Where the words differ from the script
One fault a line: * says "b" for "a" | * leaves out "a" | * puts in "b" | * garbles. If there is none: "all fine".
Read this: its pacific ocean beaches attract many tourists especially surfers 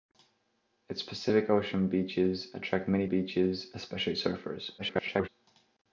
* says "beaches" for "tourists"
* garbles